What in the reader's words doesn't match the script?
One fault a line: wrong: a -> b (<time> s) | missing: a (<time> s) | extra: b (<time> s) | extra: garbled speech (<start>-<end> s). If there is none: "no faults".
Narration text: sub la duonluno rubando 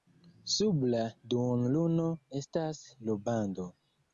extra: estas (2.4 s)